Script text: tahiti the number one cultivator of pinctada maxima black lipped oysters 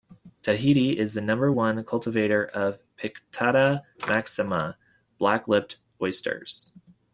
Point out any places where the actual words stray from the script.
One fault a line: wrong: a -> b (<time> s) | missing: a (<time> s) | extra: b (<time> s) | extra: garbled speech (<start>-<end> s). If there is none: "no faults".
extra: is (1.0 s)